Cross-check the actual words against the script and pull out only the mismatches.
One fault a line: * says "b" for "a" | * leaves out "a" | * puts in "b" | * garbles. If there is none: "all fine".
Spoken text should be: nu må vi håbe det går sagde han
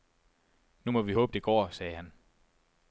all fine